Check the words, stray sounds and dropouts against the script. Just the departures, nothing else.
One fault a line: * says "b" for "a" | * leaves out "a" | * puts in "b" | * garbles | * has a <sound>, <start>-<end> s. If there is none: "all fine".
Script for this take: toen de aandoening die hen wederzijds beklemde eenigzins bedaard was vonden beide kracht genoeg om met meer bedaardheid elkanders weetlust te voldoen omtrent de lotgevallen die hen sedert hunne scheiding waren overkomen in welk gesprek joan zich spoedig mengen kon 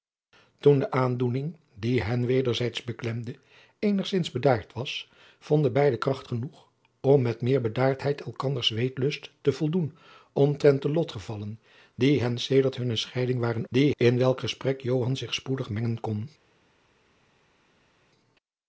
* says "die" for "overkomen"